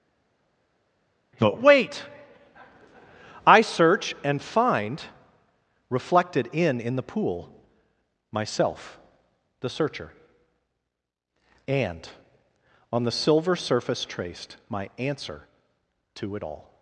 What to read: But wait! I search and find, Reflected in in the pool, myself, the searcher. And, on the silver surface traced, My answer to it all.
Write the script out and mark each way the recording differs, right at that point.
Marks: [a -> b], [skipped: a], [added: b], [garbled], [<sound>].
But wait! I search and find, Reflected in in the pool, myself, the searcher. And, on the silver surface traced, My answer to it all.